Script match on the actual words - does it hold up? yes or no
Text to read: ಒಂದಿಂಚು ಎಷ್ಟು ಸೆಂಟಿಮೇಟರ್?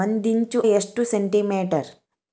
yes